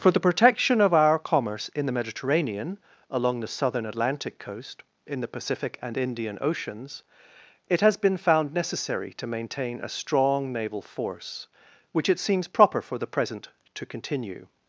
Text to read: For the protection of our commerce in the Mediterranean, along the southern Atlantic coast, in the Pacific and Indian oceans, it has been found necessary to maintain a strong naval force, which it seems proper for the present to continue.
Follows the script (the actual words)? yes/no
yes